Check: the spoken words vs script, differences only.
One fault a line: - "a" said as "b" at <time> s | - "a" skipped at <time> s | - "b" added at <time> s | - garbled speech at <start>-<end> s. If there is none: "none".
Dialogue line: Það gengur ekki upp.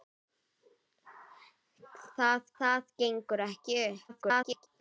- "það" added at 2.6 s
- garbled speech at 4.1-4.7 s